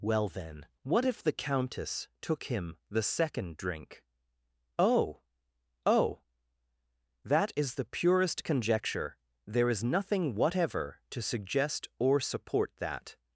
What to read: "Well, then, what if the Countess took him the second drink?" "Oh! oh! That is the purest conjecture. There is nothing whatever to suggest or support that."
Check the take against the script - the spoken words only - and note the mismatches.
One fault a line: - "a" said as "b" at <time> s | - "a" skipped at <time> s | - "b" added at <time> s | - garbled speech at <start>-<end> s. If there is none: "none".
none